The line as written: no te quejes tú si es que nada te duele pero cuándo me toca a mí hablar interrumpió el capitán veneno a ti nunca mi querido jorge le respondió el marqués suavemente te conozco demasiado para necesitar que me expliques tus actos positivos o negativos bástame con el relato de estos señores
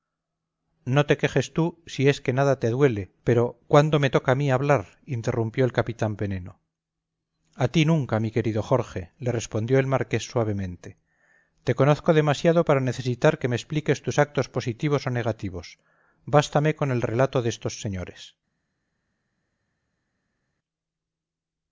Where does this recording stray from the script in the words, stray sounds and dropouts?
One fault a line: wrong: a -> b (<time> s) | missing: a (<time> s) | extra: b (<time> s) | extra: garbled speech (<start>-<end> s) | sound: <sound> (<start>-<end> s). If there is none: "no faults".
no faults